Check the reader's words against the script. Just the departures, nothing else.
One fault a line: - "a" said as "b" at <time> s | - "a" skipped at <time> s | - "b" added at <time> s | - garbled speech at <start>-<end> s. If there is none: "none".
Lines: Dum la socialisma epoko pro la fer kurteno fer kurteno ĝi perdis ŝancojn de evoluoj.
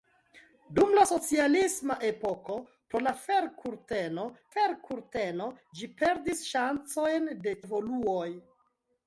none